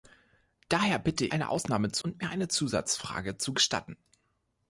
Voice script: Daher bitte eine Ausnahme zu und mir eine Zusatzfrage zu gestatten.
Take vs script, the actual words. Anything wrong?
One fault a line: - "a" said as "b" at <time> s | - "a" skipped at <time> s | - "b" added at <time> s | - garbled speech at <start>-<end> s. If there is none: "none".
none